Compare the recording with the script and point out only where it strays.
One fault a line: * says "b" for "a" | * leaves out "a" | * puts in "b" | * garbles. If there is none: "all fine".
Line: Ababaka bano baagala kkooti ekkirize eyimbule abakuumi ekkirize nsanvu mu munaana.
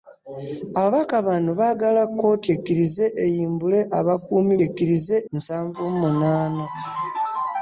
all fine